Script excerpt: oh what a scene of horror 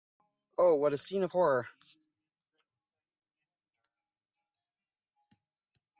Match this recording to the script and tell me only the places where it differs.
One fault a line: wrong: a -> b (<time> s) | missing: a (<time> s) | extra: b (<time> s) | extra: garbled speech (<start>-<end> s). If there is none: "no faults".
no faults